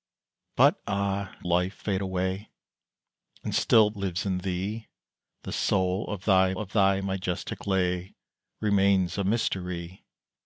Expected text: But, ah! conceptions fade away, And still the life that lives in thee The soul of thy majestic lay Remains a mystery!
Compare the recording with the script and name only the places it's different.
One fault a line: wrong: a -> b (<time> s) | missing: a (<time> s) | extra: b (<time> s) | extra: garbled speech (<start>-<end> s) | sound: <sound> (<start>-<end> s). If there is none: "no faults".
wrong: conceptions -> life (1.4 s)
missing: the life that (3.9 s)
extra: of thy (6.6 s)